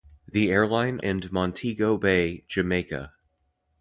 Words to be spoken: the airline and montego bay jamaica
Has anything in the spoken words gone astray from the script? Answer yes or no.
no